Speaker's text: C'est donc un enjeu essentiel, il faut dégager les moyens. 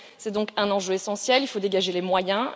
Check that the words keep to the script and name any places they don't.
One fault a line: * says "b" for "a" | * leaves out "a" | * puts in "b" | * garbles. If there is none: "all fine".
all fine